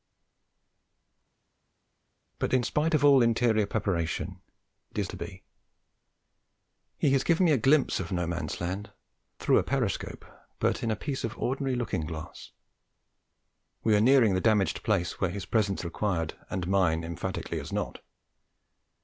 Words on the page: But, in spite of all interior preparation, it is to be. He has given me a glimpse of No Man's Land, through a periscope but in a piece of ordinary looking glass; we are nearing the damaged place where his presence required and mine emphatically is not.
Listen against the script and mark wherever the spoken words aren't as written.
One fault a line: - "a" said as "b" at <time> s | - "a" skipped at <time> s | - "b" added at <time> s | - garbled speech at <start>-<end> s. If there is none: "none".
none